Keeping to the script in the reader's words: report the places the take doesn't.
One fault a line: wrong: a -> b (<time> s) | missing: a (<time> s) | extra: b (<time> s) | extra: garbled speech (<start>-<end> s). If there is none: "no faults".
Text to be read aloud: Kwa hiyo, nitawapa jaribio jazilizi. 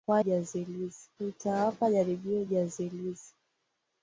wrong: hiyo -> jazilizi (0.2 s)